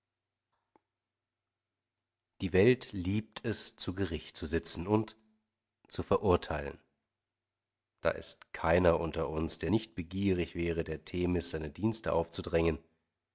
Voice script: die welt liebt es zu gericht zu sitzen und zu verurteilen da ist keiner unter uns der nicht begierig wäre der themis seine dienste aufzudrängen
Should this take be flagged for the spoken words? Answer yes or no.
no